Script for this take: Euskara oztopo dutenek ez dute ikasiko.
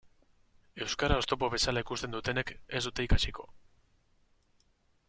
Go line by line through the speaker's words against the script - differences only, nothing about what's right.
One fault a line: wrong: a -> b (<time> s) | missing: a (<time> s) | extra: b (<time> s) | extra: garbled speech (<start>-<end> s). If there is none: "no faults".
extra: bezala ikusten (1.6 s)